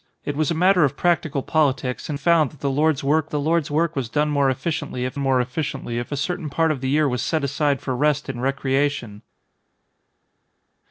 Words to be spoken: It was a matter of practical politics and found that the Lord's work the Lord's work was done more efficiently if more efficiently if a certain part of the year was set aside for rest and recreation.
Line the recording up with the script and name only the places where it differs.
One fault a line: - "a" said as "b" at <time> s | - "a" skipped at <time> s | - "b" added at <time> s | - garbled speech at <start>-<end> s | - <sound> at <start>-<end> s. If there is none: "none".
none